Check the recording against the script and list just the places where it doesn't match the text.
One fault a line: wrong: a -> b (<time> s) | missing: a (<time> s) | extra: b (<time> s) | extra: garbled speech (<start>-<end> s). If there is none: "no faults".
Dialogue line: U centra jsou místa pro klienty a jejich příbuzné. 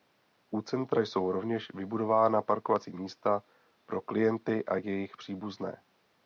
extra: rovněž vybudována parkovací (1.3 s)